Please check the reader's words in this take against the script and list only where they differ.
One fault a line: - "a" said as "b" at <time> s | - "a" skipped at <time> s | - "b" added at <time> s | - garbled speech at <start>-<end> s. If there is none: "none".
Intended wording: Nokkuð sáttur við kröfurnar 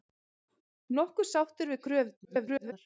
- garbled speech at 2.2-2.7 s